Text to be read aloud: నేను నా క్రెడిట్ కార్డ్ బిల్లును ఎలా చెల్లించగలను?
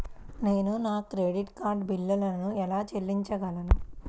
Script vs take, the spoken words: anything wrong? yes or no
no